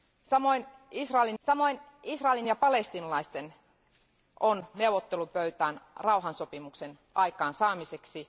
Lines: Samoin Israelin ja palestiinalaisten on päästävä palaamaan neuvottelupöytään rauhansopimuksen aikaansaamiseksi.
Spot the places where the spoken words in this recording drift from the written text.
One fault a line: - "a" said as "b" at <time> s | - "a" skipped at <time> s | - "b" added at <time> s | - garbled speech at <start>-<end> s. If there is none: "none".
- "samoin Israelin" added at 1.4 s
- "päästävä palaamaan" skipped at 4.7 s